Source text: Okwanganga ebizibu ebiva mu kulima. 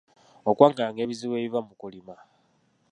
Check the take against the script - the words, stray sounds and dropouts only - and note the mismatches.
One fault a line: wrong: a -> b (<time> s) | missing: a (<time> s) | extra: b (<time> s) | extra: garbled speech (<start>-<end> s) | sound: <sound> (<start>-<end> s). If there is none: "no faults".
no faults